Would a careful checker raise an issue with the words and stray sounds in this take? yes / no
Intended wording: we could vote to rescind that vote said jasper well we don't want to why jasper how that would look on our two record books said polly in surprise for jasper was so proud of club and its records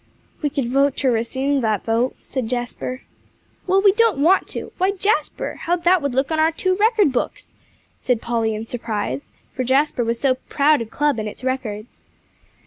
no